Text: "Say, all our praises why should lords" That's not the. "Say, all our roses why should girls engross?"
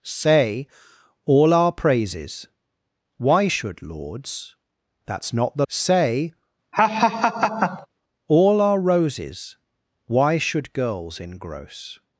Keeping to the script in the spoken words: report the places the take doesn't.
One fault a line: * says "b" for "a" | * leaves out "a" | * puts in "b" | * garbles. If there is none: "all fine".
all fine